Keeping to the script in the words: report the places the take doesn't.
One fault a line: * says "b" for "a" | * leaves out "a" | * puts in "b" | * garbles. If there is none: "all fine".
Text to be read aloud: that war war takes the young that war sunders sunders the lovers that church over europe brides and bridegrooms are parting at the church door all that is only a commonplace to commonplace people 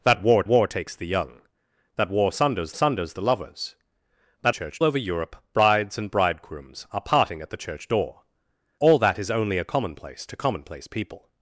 all fine